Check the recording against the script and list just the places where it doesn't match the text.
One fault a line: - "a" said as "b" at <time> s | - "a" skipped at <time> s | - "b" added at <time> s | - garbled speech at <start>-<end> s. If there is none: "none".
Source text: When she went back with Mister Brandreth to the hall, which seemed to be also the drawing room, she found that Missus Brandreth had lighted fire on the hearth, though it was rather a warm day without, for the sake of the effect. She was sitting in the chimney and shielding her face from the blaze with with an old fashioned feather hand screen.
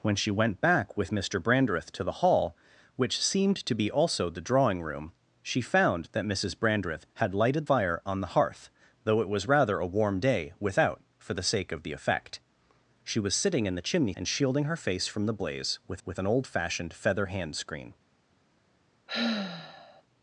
none